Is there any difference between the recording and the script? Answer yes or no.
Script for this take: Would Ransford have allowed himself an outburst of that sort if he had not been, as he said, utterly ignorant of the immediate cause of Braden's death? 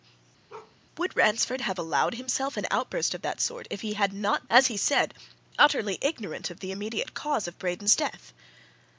yes